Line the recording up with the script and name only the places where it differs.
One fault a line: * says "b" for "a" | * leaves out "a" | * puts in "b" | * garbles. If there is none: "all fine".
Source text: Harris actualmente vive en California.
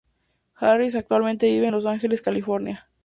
* puts in "Los Ángeles"